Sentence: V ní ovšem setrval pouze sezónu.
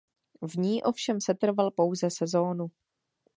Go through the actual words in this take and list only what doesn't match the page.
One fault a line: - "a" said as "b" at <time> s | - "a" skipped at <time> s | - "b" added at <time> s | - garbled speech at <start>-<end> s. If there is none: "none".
none